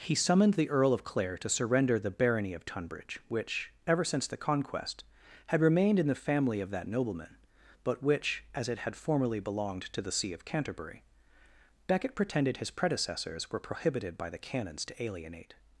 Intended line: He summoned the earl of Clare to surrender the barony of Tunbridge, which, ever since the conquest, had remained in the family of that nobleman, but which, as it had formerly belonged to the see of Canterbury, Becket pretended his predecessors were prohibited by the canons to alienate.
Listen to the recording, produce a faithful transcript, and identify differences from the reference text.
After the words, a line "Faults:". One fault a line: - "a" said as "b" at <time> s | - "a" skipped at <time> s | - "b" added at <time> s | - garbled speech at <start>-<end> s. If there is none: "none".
He summoned the earl of Clare to surrender the barony of Tunbridge, which, ever since the conquest, had remained in the family of that nobleman, but which, as it had formerly belonged to the see of Canterbury, Becket pretended his predecessors were prohibited by the canons to alienate.
Faults:
none